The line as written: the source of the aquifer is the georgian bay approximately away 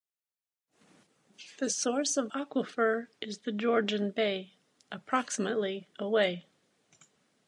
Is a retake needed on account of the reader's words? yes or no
yes